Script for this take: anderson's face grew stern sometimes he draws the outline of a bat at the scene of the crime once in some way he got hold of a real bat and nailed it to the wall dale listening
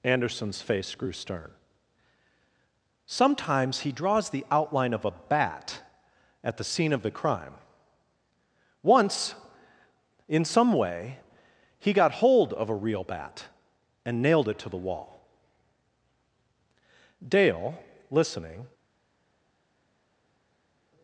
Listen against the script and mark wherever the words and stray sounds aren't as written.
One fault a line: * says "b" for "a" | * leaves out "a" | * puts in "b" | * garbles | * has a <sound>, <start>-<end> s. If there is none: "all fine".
all fine